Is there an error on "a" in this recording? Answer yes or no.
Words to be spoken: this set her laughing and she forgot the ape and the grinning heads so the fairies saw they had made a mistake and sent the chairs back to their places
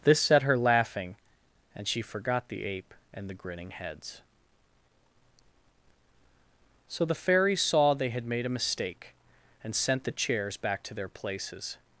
no